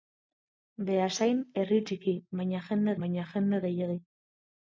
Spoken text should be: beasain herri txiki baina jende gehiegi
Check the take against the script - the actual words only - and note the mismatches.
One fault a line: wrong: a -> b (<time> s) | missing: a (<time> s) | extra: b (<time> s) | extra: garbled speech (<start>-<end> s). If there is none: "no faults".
extra: baina jende (3.0 s)